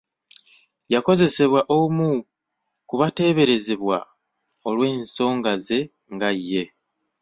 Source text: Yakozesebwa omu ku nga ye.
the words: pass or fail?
fail